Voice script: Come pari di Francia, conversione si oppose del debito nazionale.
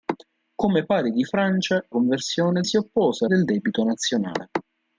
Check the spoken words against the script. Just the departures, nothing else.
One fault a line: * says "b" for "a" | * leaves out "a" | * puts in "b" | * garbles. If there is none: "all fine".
all fine